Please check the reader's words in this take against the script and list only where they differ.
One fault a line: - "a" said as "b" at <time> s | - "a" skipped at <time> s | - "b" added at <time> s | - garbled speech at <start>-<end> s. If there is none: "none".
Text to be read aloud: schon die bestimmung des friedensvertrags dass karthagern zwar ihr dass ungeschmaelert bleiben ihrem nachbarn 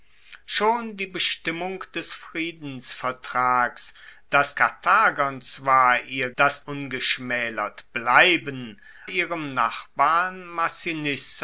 none